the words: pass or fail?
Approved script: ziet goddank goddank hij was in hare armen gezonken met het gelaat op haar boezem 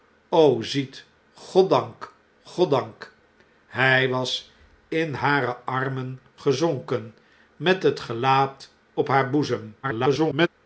fail